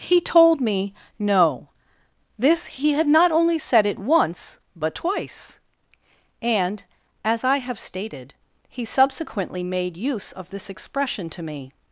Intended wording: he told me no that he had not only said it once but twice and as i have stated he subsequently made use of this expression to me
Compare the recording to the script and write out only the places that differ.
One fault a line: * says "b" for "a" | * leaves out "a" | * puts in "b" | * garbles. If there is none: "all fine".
* says "this" for "that"